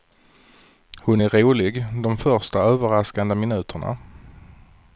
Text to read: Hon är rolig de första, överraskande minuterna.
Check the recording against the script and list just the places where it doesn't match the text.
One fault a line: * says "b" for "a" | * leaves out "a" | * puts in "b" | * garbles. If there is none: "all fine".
all fine